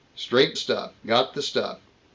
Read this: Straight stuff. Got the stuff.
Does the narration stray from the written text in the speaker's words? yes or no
no